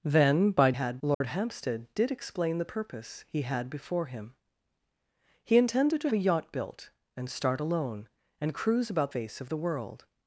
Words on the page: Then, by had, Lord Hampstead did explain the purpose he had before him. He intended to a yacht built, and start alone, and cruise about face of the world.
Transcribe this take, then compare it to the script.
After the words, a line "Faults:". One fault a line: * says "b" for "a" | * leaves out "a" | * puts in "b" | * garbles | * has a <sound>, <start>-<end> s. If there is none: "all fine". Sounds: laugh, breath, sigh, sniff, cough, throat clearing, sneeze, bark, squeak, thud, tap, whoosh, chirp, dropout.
Then, by had, Lord Hampstead did explain the purpose he had before him. He intended to a yacht built, and start alone, and cruise about face of the world.
Faults:
* has a dropout, 1.1-1.2 s